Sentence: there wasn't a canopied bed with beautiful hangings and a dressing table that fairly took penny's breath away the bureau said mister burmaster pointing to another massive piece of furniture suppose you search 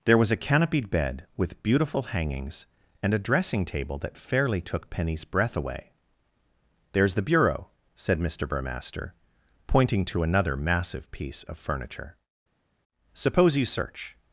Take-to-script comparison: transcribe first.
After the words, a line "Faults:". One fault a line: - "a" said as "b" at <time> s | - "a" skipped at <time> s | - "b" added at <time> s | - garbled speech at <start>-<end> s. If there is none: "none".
there was a canopied bed with beautiful hangings and a dressing table that fairly took penny's breath away there's the bureau said mister burmaster pointing to another massive piece of furniture suppose you search
Faults:
- "wasn't" said as "was" at 0.2 s
- "there's" added at 6.9 s